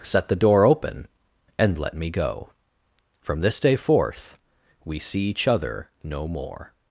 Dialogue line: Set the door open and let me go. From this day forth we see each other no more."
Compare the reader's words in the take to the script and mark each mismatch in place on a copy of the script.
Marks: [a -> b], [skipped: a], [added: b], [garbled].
Set the door open and let me go. From this day forth we see each other no more."